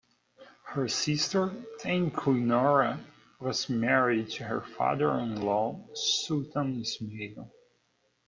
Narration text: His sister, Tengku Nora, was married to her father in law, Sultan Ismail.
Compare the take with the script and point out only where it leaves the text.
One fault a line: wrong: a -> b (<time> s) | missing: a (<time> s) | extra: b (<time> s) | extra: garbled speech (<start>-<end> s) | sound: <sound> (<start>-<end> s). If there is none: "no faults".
wrong: His -> Her (0.6 s)